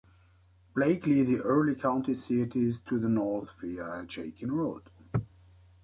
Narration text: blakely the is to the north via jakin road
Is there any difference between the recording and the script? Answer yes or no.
yes